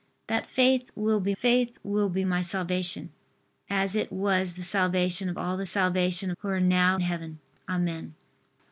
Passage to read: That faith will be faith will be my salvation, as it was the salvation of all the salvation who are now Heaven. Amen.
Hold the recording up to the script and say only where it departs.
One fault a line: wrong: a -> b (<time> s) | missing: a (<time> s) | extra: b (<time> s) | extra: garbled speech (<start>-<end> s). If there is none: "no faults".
no faults